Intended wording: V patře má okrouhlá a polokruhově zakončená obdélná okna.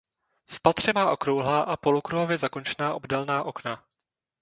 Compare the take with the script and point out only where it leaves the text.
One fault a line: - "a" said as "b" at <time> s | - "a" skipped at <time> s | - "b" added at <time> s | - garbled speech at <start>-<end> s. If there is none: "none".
none